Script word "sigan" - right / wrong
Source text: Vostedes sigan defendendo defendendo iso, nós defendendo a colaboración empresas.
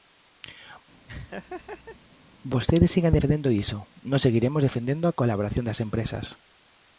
right